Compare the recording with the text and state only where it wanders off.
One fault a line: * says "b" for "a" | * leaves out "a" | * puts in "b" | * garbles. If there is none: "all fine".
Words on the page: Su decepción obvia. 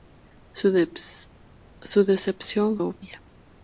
all fine